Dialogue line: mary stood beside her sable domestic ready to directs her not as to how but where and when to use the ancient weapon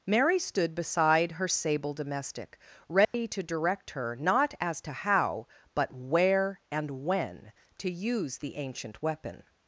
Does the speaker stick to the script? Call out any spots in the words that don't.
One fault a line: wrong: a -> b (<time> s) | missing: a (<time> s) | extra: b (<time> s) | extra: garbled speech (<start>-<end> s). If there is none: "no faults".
wrong: directs -> direct (3.4 s)